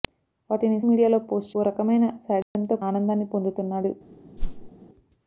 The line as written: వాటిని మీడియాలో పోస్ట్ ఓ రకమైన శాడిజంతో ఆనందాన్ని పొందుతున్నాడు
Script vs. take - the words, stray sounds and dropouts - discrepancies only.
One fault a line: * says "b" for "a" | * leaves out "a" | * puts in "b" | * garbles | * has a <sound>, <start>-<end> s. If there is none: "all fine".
* has a dropout, 2.4-2.6 s
* has a whoosh, 4.4-4.7 s